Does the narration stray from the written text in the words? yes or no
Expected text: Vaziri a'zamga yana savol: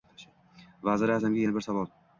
yes